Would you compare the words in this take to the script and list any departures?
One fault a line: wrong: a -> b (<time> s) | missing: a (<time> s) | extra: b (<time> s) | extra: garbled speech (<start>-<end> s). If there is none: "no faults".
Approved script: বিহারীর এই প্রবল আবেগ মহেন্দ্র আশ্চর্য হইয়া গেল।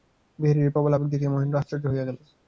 extra: দেখিয়া (1.1 s)